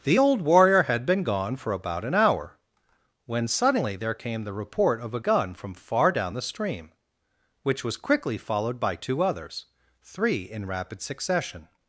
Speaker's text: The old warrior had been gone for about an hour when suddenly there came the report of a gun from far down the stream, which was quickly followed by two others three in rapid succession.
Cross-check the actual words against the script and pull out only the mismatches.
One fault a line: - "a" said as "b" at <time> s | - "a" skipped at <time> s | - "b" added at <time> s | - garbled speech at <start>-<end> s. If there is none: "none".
none